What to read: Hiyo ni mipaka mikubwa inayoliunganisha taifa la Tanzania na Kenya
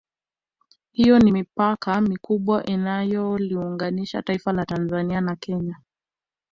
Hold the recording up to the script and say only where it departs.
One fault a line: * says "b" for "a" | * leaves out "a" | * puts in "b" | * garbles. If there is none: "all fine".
all fine